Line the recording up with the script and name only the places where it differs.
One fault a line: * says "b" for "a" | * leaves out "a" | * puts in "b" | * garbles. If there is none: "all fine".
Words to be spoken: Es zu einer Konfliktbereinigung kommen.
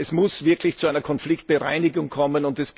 * puts in "muss wirklich"